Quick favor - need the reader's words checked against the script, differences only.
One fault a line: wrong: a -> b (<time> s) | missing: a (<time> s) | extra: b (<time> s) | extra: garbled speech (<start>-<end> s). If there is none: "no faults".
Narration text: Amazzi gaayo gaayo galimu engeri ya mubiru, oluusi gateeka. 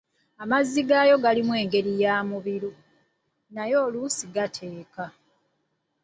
missing: gaayo (1.1 s)
extra: naye (3.5 s)